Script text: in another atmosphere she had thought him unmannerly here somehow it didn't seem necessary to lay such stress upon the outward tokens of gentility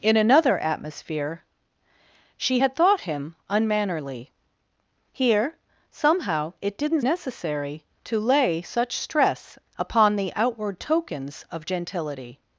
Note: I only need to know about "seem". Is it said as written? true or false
false